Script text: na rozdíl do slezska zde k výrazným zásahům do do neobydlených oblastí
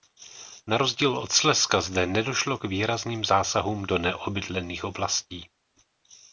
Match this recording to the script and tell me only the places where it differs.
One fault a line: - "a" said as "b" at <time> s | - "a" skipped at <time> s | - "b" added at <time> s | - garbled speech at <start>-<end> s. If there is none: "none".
- "do" said as "od" at 1.2 s
- "nedošlo" added at 2.0 s
- "do" skipped at 4.0 s